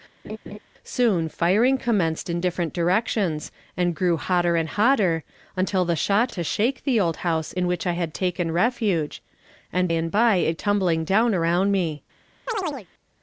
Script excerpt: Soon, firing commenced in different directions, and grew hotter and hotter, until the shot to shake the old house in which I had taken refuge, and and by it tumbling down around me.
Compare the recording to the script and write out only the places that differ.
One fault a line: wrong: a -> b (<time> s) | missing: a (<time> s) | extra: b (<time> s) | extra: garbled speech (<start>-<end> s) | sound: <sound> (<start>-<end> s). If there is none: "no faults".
sound: laugh (0.2-0.6 s)
sound: chirp (12.5-12.9 s)